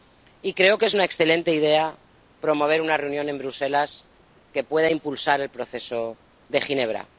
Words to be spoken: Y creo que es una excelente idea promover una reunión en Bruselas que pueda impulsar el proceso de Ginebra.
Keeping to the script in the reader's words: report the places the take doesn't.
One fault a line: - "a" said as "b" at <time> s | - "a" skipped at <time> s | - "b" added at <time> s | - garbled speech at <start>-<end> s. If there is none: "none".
none